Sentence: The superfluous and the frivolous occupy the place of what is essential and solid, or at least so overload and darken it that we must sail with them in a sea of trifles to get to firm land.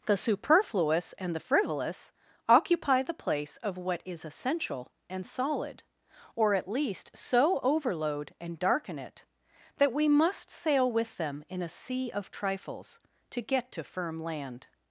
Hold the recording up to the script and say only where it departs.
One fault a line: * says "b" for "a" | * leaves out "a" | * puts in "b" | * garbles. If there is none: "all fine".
all fine